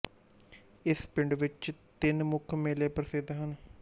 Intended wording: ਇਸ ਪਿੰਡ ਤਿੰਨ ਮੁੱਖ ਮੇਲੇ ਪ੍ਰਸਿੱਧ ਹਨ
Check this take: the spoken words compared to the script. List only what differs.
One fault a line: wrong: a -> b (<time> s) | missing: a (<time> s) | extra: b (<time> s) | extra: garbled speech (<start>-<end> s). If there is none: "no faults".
extra: ਵਿੱਚ (1.3 s)